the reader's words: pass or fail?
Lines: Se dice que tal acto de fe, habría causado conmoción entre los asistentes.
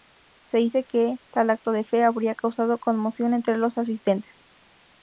pass